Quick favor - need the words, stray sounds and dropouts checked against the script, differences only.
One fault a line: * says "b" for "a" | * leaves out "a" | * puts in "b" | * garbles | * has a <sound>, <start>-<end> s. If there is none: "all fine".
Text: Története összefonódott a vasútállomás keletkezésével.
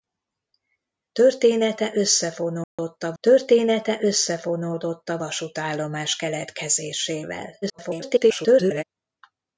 * has a dropout, 2.6-2.8 s
* puts in "története összefonódott a"
* garbles